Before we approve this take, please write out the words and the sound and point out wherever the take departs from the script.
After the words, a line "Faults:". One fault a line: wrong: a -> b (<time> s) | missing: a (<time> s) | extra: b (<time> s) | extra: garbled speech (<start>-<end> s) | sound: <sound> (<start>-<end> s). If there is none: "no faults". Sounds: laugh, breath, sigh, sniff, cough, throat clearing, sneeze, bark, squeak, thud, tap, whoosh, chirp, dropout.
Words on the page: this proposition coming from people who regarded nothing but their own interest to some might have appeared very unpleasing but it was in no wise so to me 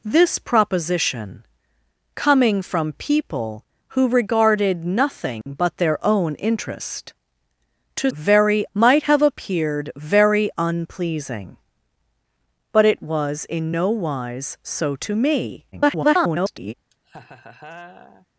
this proposition coming from people who regarded nothing but their own interest to very might have appeared very unpleasing but it was in no wise so to me [garbled]
Faults:
sound: dropout (5.4-5.5 s)
wrong: some -> very (8.1 s)
extra: garbled speech (15.7-16.7 s)
sound: laugh (16.9-18.3 s)